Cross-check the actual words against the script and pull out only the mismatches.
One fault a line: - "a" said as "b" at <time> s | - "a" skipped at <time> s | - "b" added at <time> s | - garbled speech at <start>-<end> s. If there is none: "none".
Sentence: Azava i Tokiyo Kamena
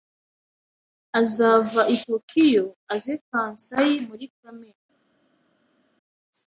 - "aze Kansai muri" added at 2.9 s